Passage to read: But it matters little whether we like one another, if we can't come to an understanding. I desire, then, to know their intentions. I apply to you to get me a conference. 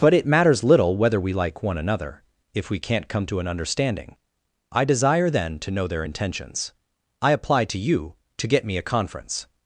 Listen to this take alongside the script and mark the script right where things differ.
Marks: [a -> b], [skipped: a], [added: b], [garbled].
But it matters little whether we like one another, if we can't come to an understanding. I desire, then, to know their intentions. I apply to you to get me a conference.